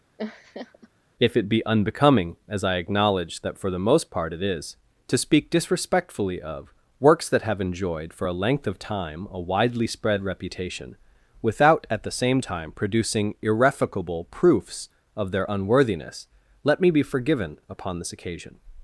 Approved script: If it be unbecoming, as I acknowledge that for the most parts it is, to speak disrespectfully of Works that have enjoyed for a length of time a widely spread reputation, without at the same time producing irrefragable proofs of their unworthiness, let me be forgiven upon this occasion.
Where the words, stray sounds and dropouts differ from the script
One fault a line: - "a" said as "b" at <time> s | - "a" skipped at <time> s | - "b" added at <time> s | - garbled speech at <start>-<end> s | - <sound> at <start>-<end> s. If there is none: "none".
- laugh at 0.2-0.9 s
- "parts" said as "part" at 4.1 s